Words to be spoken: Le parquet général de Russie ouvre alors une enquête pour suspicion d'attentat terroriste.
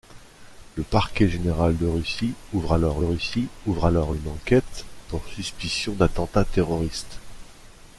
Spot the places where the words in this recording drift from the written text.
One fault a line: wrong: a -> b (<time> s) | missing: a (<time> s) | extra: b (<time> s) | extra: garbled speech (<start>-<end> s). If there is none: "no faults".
extra: Russie ouvre alors (3.0 s)